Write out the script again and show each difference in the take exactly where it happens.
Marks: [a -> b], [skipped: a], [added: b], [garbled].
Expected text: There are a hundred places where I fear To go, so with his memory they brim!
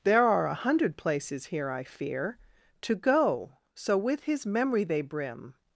There are a hundred places [where -> here] I fear To go, so with his memory they brim!